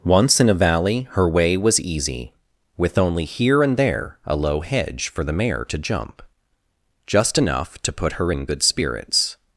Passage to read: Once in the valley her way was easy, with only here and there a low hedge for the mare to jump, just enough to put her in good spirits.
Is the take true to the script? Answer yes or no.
no